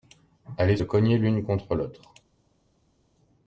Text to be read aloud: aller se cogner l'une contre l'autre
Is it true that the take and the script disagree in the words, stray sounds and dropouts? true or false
true